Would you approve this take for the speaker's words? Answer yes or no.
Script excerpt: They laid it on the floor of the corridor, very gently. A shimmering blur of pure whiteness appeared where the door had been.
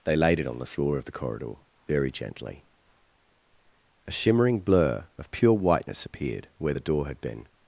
yes